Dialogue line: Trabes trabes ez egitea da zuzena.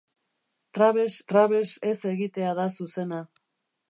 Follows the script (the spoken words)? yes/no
yes